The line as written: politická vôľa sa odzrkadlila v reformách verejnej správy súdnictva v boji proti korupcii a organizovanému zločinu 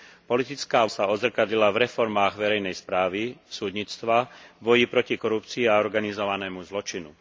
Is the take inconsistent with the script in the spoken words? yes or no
yes